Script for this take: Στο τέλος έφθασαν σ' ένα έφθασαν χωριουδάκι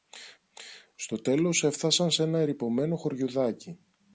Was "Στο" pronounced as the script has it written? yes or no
yes